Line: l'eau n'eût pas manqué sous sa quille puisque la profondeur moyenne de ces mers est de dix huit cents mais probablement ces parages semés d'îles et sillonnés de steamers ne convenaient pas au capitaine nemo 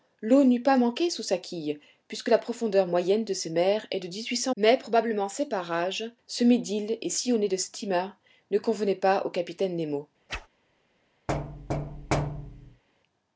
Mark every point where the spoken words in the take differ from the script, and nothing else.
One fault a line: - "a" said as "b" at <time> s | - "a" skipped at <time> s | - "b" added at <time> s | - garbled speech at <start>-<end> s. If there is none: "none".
none